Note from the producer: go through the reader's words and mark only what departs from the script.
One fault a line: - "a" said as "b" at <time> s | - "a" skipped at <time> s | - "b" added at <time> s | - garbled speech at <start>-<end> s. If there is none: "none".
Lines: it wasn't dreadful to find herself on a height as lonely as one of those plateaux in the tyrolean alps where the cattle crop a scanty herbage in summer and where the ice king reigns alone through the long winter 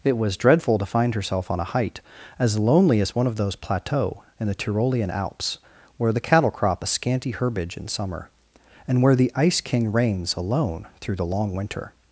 - "wasn't" said as "was" at 0.2 s